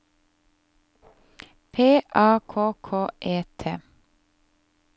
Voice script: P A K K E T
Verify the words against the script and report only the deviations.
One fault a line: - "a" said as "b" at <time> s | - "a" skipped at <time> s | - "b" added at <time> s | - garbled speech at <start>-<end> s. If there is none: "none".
none